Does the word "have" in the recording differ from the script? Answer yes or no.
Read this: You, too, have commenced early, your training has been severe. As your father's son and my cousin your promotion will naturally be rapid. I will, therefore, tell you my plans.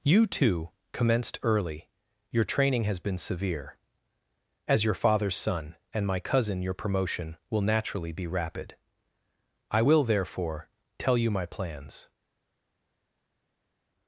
yes